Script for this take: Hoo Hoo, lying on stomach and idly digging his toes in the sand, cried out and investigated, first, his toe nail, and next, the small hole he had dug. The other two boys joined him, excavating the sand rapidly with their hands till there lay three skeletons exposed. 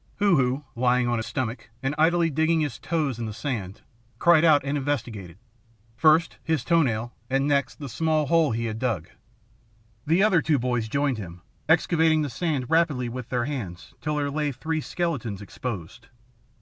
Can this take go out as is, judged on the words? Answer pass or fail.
pass